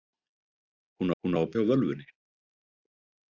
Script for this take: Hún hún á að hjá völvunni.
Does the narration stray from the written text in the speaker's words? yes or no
no